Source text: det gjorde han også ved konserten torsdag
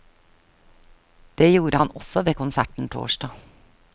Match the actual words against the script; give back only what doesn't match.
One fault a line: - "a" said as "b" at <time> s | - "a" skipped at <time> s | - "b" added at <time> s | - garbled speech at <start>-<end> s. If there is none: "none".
none